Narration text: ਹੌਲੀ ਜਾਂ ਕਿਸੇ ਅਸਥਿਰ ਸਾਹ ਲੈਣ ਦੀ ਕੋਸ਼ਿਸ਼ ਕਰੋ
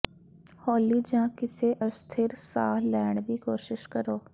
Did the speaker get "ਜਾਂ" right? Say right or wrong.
right